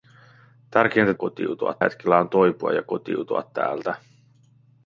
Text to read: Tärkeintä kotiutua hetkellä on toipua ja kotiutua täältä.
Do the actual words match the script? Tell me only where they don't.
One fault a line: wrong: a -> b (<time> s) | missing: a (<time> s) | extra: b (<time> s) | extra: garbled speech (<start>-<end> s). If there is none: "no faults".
no faults